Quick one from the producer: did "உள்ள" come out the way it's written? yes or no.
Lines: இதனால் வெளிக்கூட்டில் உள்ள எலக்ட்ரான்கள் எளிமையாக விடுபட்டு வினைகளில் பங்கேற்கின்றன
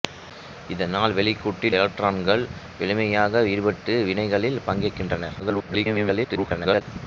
no